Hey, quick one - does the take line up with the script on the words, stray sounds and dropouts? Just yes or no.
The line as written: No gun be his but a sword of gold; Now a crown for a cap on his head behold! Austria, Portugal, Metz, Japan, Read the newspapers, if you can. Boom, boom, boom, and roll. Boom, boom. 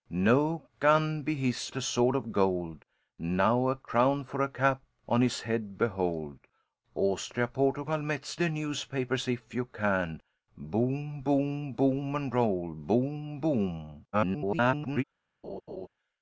no